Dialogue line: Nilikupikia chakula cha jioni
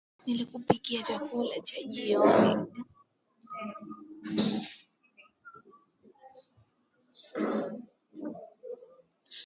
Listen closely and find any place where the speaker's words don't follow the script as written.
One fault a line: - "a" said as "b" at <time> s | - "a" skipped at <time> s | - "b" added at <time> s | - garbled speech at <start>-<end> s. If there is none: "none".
none